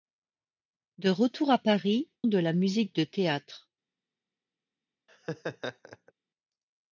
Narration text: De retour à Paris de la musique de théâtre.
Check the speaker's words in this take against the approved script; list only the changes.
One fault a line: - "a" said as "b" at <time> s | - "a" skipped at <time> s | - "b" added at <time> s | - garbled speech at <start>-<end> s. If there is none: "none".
none